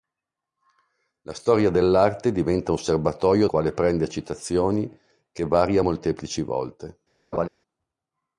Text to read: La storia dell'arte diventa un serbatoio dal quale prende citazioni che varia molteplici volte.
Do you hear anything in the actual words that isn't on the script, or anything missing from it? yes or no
yes